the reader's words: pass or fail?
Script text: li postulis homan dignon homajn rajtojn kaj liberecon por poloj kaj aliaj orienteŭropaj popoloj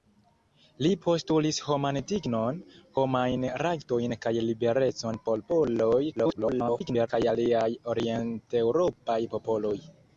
fail